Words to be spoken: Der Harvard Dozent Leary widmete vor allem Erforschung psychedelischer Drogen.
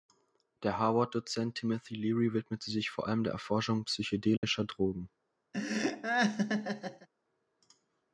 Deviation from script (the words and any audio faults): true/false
true